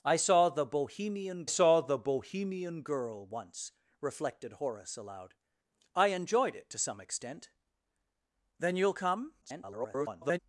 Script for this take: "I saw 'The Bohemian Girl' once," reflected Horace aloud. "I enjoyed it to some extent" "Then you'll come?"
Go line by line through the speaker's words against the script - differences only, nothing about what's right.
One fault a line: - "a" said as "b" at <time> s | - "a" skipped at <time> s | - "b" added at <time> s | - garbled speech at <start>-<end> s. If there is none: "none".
- "saw The Bohemian" added at 1.4 s
- garbled speech at 9.4-10.4 s